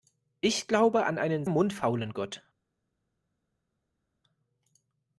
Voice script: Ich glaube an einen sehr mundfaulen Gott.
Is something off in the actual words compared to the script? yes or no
yes